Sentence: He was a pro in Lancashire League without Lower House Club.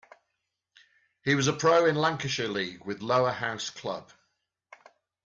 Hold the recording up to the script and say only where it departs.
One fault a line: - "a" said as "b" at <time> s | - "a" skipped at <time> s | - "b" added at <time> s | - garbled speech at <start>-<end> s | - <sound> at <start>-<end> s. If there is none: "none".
- "without" said as "with" at 2.8 s